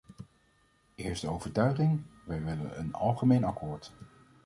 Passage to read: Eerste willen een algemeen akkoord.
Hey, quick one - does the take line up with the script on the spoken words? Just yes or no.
no